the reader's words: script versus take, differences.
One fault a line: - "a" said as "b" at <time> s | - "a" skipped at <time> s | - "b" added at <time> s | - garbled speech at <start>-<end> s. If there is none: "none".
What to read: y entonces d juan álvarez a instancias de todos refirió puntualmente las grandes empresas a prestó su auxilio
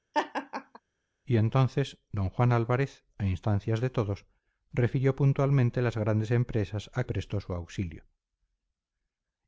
none